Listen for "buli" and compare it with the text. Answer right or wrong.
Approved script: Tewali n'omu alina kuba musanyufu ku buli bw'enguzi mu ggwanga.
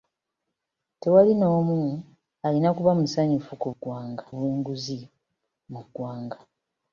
wrong